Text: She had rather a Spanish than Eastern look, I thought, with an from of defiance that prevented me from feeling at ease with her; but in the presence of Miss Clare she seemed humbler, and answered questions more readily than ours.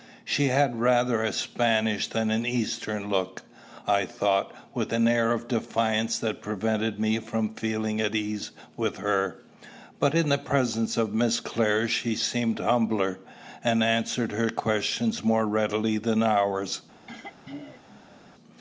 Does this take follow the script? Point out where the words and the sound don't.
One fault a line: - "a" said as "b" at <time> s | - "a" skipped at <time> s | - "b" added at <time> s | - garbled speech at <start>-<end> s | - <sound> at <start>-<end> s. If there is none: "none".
- "an" added at 2.3 s
- "from" said as "air" at 5.1 s
- "her" added at 14.3 s
- throat clearing at 17.1-18.2 s